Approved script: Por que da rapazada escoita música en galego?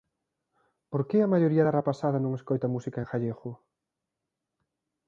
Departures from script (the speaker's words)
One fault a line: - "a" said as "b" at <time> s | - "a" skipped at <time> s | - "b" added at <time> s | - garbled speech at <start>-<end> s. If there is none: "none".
- "a maioría" added at 1.2 s
- "non" added at 2.2 s